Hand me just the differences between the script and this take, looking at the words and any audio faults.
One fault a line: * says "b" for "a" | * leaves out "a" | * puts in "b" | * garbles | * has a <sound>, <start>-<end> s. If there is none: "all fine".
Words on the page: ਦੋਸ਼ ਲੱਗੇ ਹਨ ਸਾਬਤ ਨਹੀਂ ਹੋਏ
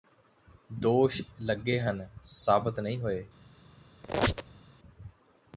* has a squeak, 4.0-4.6 s